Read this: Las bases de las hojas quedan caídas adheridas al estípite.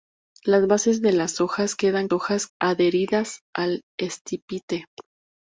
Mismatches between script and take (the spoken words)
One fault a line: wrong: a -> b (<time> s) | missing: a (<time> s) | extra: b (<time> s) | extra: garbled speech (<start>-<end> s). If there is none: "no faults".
wrong: caídas -> hojas (2.1 s)